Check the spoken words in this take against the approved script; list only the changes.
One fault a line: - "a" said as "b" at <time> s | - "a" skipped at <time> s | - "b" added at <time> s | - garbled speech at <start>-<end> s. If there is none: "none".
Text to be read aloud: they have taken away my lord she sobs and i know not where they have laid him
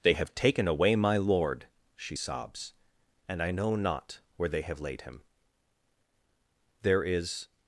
- "there is" added at 6.8 s